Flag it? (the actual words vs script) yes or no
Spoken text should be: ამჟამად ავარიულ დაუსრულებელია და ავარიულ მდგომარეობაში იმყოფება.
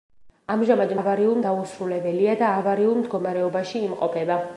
no